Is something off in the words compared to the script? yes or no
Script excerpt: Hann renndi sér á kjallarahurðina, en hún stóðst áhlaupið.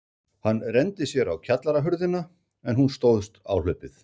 no